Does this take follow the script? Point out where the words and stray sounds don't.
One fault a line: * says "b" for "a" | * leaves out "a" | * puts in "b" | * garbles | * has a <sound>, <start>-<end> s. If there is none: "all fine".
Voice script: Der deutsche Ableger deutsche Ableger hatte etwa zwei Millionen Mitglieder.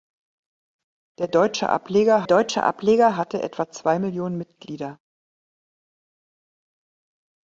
all fine